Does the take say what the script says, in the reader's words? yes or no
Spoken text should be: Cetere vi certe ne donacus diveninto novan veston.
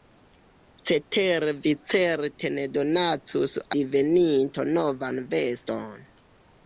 yes